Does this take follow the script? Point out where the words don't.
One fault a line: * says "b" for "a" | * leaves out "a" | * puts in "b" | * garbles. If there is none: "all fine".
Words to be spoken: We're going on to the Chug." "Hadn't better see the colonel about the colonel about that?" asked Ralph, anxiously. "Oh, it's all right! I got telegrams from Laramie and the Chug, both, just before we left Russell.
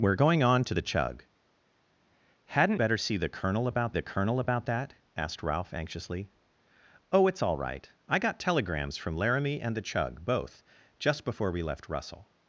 all fine